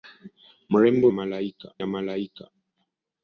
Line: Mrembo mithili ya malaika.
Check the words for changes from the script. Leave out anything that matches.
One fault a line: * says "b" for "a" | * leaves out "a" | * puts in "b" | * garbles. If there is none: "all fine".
* says "malaika" for "mithili"